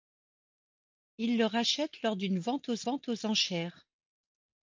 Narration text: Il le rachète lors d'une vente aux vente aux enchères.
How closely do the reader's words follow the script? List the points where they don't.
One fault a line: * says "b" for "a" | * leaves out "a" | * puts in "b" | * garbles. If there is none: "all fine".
all fine